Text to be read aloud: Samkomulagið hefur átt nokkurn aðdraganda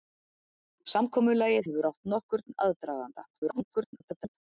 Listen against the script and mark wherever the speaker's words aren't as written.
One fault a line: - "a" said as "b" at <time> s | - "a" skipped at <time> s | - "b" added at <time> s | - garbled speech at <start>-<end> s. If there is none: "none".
- garbled speech at 3.3-4.4 s